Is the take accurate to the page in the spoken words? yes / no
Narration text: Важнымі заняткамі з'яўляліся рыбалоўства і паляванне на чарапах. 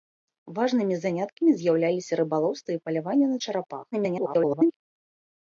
no